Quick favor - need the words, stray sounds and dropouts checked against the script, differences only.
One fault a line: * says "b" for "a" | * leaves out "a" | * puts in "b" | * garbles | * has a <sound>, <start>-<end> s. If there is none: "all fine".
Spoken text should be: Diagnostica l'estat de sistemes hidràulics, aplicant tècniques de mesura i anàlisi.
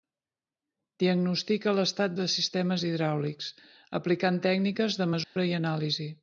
* has a dropout, 5.2-5.4 s